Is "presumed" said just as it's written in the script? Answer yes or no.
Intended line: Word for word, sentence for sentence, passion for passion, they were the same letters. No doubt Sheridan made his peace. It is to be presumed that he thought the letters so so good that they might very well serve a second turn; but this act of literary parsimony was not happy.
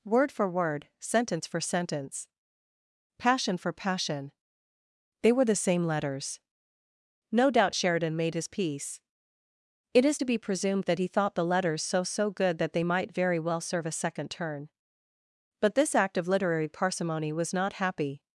yes